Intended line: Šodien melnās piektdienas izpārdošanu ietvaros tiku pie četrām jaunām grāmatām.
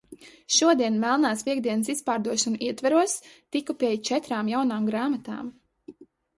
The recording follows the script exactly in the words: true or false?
true